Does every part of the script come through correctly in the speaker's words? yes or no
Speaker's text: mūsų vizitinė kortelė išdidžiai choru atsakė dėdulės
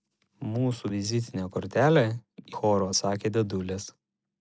no